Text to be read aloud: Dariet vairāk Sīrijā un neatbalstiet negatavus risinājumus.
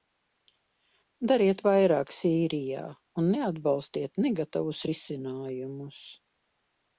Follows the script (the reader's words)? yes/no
yes